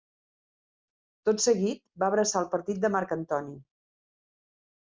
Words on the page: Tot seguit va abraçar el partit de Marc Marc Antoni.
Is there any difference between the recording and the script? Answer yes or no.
yes